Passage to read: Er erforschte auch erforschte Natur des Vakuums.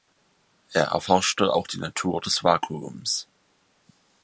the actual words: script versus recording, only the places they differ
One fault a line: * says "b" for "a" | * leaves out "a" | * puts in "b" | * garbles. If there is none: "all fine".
* says "die" for "erforschte"